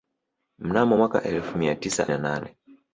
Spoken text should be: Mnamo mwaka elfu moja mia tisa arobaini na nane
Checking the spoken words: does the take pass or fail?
fail